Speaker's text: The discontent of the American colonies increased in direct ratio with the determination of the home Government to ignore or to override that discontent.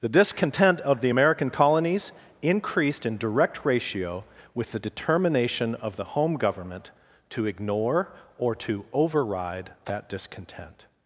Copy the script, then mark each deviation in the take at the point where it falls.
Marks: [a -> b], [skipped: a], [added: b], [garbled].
The discontent of the American colonies increased in direct ratio with the determination of the home Government to ignore or to override that discontent.